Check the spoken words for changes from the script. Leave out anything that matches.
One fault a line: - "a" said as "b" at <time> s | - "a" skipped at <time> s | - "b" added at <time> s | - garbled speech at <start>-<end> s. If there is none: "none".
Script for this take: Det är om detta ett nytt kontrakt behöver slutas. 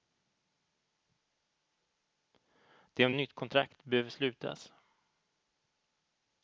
- "detta" skipped at 3.1 s